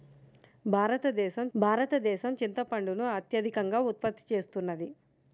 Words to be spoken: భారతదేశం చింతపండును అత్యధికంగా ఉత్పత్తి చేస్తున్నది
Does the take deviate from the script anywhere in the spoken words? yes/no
yes